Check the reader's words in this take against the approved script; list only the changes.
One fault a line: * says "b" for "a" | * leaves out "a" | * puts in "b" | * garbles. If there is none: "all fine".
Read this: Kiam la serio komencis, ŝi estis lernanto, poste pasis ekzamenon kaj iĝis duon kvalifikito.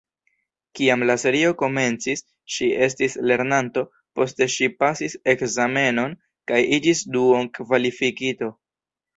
* puts in "ŝi"